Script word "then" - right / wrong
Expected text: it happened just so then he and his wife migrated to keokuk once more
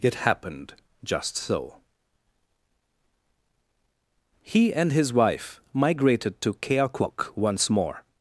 wrong